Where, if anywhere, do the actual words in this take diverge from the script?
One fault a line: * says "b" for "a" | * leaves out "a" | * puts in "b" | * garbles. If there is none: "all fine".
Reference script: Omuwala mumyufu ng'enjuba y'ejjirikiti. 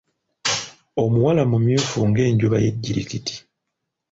all fine